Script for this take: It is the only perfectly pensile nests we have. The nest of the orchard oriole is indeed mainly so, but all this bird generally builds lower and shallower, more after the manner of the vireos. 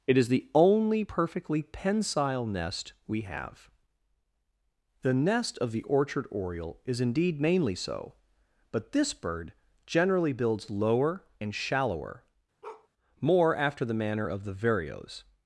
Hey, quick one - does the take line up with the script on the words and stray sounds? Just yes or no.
no